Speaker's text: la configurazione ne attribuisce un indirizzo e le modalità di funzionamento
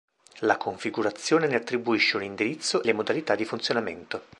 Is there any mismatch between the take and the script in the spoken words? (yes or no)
yes